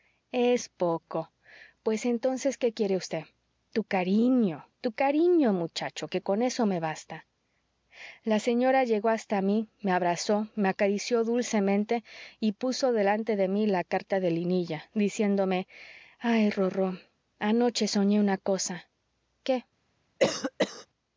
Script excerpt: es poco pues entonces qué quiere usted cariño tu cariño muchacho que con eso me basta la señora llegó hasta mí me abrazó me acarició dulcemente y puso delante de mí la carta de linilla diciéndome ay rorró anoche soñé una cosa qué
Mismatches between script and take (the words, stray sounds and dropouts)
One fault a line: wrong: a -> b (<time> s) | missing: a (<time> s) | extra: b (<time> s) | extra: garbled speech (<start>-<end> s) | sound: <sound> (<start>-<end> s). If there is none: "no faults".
extra: tu (3.7 s)
sound: cough (20.2-20.9 s)